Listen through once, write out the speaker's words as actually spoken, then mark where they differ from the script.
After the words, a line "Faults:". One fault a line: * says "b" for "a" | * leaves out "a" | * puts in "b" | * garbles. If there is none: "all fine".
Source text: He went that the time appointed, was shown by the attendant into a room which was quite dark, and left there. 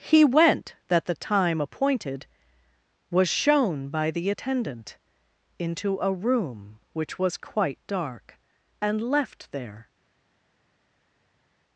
He went that the time appointed, was shown by the attendant into a room which was quite dark, and left there.
Faults:
all fine